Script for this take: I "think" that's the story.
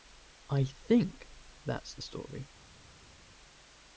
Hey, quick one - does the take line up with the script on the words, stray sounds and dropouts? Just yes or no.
yes